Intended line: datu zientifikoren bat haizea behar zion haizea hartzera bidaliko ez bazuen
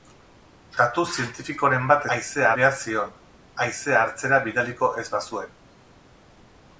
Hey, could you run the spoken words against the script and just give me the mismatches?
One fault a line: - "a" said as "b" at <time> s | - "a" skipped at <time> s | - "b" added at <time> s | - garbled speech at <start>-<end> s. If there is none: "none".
none